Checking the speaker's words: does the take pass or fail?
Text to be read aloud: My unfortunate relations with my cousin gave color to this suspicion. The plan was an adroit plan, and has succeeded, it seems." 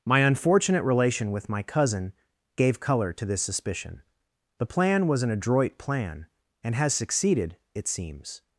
fail